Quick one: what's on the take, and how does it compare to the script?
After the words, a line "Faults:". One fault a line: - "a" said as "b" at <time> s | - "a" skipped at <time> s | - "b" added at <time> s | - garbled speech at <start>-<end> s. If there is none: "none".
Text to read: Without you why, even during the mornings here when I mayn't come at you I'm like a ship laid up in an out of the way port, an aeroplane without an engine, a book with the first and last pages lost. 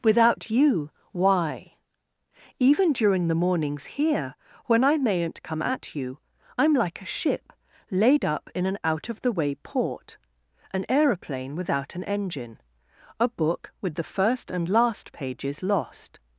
Without you why, even during the mornings here when I mayn't come at you I'm like a ship laid up in an out of the way port, an aeroplane without an engine, a book with the first and last pages lost.
Faults:
none